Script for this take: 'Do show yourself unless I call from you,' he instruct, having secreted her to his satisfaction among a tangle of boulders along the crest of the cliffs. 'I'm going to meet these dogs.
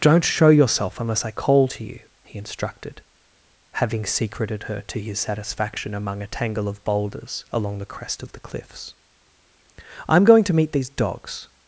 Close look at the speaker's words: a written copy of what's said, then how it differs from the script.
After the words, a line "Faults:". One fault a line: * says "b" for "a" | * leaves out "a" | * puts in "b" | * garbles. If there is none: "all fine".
'Don't show yourself unless I call to you,' he instructed, having secreted her to his satisfaction among a tangle of boulders along the crest of the cliffs. 'I'm going to meet these dogs.
Faults:
* says "Don't" for "Do"
* says "to" for "from"
* says "instructed" for "instruct"